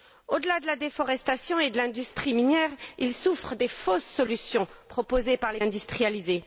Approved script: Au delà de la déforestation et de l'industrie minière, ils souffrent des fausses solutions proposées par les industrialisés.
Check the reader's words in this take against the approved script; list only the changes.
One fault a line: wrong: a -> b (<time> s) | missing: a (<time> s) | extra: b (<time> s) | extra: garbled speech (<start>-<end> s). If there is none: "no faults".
no faults